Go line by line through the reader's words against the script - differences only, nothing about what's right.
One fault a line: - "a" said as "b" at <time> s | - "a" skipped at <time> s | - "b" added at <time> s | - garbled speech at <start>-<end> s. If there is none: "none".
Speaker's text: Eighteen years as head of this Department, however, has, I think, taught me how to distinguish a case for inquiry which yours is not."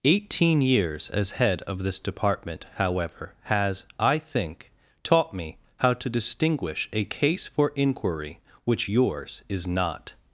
none